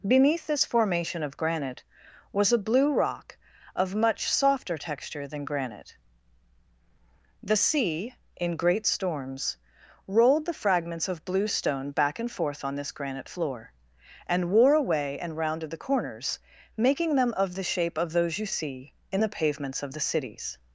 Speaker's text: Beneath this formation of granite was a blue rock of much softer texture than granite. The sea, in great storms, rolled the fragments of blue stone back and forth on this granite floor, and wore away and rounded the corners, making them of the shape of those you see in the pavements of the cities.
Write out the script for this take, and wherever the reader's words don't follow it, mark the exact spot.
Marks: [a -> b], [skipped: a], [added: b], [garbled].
Beneath this formation of granite was a blue rock of much softer texture than granite. The sea, in great storms, rolled the fragments of blue stone back and forth on this granite floor, and wore away and rounded the corners, making them of the shape of those you see in the pavements of the cities.